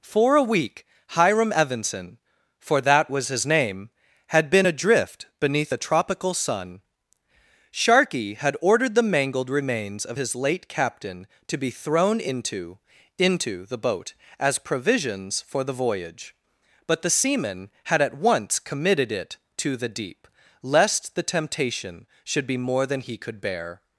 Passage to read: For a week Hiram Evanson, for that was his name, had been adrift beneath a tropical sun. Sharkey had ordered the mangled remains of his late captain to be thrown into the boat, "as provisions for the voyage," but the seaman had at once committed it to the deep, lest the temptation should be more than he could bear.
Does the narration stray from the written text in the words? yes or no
yes